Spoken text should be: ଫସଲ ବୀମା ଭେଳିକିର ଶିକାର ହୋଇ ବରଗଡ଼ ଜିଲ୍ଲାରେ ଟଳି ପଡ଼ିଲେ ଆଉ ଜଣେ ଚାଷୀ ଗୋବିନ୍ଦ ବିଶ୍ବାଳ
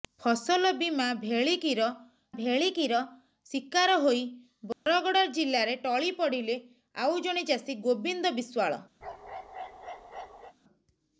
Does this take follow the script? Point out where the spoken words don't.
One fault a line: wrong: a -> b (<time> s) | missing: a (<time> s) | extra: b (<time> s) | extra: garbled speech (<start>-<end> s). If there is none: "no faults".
extra: ଭେଳିକିର (2.3 s)